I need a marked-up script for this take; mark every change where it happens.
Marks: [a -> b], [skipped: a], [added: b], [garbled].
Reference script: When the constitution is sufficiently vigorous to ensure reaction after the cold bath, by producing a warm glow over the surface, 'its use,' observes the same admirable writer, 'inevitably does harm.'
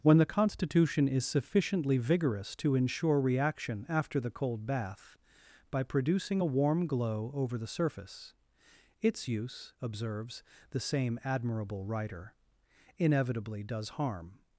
When the constitution is sufficiently vigorous to ensure reaction after the cold bath, by producing a warm glow over the surface, 'its use,' observes the same admirable writer, 'inevitably does harm.'